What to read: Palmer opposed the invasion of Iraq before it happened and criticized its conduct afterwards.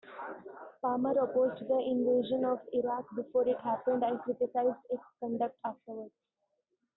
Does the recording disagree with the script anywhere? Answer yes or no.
no